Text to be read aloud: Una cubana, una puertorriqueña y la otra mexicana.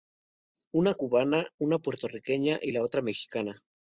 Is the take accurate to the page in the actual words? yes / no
yes